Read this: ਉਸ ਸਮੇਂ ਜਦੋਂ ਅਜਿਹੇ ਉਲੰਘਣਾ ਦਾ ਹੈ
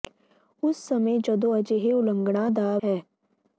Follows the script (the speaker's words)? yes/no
yes